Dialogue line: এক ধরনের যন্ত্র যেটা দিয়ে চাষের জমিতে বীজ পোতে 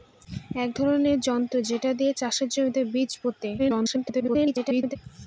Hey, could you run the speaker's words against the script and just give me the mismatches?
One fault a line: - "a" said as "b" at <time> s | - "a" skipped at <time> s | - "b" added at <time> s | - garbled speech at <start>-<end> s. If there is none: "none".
- garbled speech at 3.6-5.0 s